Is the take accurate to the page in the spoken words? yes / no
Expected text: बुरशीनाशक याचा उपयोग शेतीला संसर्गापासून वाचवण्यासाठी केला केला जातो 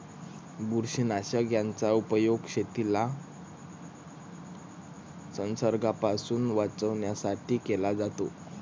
no